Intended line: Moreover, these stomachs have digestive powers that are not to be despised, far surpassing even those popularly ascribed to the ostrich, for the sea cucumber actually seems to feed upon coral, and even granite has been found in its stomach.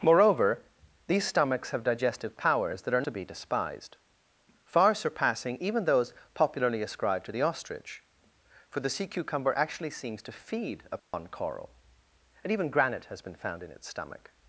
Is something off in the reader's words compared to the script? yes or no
yes